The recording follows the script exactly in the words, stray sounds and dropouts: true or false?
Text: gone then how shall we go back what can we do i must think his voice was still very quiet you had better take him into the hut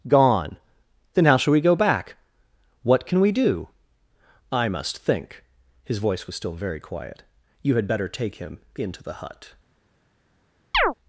false